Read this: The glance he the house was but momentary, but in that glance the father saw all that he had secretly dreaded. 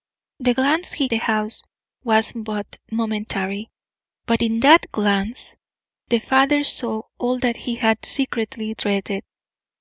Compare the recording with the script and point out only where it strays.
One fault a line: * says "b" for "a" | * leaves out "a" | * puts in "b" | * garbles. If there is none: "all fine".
all fine